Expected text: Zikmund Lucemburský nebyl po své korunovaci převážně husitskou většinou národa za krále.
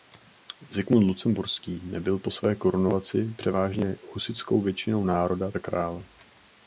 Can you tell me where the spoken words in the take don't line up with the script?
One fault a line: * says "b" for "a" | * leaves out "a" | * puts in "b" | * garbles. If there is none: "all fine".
all fine